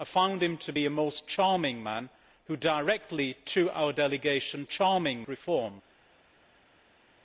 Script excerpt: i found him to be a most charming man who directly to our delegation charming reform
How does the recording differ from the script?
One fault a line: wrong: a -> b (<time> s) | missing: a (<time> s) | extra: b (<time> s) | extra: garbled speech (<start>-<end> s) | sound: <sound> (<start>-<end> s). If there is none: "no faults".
no faults